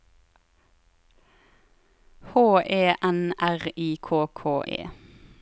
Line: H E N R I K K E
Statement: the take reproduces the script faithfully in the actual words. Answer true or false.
true